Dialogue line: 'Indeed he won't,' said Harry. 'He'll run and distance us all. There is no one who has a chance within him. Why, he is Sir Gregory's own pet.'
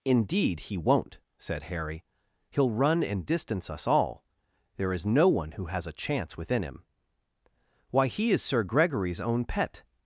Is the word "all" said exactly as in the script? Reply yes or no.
yes